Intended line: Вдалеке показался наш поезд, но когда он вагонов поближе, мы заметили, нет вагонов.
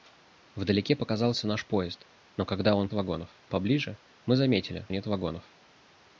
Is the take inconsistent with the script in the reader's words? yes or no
no